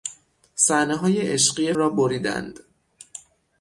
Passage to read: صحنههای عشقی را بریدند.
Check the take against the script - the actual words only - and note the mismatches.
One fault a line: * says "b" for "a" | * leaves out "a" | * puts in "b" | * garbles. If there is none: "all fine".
all fine